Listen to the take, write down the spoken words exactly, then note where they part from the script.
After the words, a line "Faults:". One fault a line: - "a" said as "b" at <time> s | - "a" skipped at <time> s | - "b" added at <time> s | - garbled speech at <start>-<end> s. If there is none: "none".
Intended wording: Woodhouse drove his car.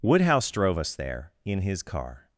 Woodhouse drove us there in his car.
Faults:
- "us there in" added at 0.8 s